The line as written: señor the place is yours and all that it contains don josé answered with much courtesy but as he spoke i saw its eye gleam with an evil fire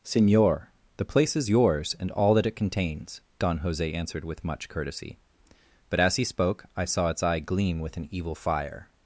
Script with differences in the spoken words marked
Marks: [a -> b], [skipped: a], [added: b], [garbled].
señor the place is yours and all that it contains don josé answered with much courtesy but as he spoke i saw its eye gleam with an evil fire